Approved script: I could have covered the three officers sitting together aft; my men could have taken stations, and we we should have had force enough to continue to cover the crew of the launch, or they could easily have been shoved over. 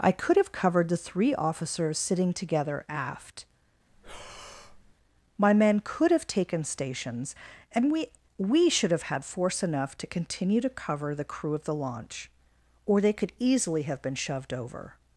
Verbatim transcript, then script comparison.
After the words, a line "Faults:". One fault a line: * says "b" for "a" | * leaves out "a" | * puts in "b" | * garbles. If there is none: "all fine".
I could have covered the three officers sitting together aft; my men could have taken stations, and we we should have had force enough to continue to cover the crew of the launch, or they could easily have been shoved over.
Faults:
all fine